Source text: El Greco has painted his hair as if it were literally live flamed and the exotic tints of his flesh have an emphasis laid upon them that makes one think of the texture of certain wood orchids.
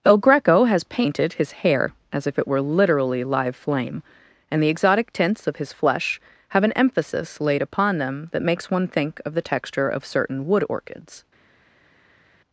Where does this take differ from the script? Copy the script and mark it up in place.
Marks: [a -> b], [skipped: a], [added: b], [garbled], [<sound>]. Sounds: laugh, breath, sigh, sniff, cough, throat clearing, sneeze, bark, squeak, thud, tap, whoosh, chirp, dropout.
El Greco has painted his hair as if it were literally live [flamed -> flame] and the exotic tints of his flesh have an emphasis laid upon them that makes one think of the texture of certain wood orchids.